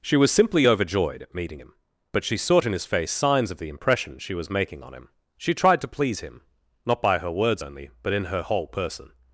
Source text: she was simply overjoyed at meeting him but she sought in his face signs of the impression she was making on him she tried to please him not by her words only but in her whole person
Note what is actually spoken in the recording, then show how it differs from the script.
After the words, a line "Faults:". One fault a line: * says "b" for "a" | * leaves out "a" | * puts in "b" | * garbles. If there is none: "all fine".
she was simply overjoyed at meeting him but she sought in his face signs of the impression she was making on him she tried to please him not by her words only but in her whole person
Faults:
all fine